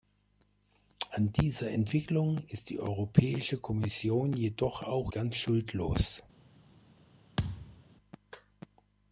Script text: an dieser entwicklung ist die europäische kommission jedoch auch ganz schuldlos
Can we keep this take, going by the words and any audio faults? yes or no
no